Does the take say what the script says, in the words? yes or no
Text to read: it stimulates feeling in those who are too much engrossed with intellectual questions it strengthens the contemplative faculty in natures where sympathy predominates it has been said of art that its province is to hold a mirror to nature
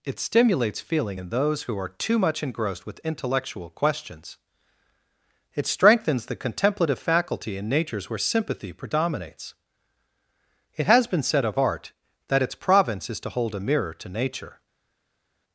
yes